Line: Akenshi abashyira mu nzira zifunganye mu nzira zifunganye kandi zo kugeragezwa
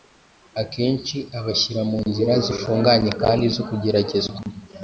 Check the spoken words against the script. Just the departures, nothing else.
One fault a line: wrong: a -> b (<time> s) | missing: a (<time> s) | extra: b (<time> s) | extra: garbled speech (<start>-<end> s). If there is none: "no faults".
missing: mu nzira zifunganye (3.1 s)